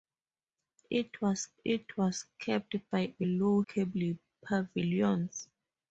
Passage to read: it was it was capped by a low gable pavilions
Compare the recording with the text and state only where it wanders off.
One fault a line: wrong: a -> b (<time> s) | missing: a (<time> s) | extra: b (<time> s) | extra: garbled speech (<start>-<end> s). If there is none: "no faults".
no faults